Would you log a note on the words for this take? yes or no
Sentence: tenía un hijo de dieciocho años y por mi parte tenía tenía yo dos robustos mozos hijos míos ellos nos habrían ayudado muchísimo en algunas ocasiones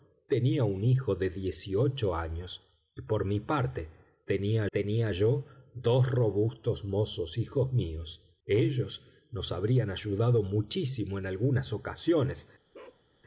no